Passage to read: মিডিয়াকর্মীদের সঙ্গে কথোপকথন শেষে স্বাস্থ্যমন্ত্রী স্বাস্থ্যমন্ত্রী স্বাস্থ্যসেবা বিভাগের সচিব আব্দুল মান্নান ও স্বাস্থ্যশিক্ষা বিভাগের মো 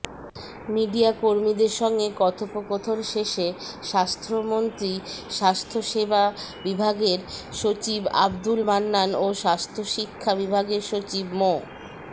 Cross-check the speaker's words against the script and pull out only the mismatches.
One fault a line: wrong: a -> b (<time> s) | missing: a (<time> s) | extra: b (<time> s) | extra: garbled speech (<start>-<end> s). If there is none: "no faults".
missing: স্বাস্থ্যমন্ত্রী (4.9 s)
extra: সচিব (10.8 s)